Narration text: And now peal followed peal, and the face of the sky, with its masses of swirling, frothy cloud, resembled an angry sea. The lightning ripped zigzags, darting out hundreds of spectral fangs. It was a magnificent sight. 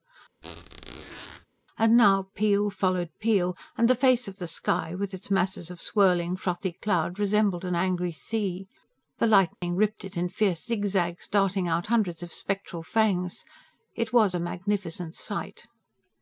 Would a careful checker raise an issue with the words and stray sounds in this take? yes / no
yes